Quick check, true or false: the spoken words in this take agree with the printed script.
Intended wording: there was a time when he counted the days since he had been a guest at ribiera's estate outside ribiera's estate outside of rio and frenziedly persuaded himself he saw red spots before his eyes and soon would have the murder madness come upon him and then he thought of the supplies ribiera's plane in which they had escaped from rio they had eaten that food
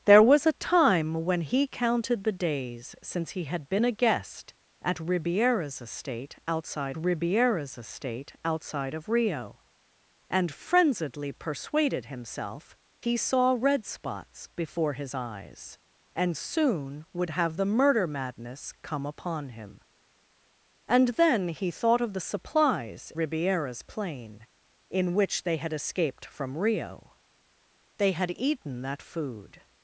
true